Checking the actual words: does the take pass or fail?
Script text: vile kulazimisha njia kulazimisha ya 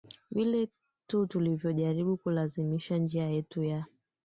fail